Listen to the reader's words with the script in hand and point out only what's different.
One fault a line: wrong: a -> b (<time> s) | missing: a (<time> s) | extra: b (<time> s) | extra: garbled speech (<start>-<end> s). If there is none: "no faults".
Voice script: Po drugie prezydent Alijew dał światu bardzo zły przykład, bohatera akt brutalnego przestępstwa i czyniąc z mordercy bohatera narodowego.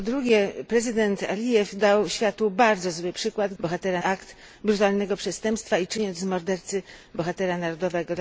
no faults